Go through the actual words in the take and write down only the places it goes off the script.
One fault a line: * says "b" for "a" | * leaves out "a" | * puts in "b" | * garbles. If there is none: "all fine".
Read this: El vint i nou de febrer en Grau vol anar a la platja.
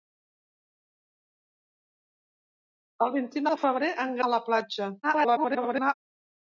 * leaves out "nou"
* leaves out "Grau vol anar"
* garbles